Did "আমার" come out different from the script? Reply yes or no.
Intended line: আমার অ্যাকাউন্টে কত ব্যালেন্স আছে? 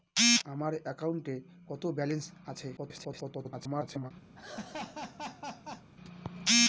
no